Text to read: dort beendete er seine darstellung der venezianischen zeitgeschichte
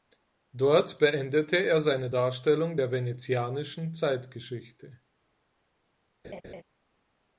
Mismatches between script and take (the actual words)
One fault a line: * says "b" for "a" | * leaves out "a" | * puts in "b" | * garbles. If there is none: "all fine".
all fine